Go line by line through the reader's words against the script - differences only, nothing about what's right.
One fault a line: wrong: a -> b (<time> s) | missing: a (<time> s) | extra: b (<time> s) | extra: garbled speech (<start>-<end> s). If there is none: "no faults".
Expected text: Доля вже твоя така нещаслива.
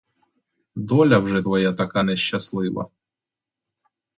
no faults